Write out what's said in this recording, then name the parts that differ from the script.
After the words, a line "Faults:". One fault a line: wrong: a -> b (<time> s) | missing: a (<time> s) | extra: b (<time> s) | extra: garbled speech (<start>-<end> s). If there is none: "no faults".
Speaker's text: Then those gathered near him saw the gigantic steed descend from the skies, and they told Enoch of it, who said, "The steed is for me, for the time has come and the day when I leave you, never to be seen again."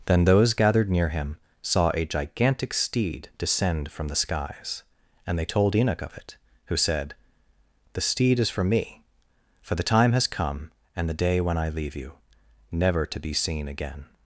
Then those gathered near him saw a gigantic steed descend from the skies, and they told Enoch of it, who said, "The steed is for me, for the time has come and the day when I leave you, never to be seen again."
Faults:
wrong: the -> a (1.9 s)